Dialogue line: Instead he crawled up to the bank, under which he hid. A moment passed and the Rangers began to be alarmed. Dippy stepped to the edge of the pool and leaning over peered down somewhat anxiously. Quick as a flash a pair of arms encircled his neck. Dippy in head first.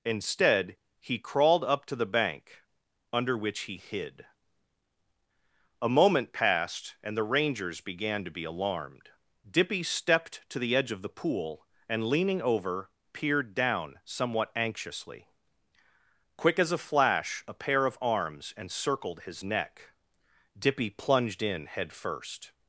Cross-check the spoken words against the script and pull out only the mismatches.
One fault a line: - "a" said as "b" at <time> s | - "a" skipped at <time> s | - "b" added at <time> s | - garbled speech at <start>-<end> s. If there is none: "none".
- "plunged" added at 20.9 s